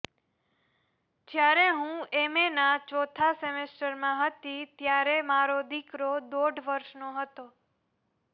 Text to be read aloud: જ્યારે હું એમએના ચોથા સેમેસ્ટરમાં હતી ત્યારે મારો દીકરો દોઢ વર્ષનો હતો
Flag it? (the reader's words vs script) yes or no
no